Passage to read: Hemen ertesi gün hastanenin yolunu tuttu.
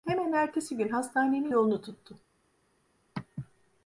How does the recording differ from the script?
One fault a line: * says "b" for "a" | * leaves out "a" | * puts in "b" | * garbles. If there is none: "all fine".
all fine